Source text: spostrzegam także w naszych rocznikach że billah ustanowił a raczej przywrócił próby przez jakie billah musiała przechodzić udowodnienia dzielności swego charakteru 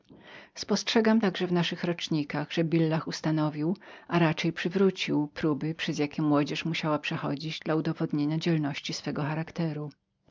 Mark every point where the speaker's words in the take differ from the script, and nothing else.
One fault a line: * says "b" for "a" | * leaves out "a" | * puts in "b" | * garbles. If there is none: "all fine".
* says "młodzież" for "billah"
* puts in "dla"